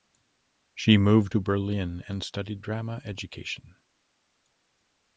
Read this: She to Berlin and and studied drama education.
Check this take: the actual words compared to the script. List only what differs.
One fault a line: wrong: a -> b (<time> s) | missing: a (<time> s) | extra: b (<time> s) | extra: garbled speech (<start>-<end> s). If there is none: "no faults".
extra: moved (1.0 s)
missing: and (2.2 s)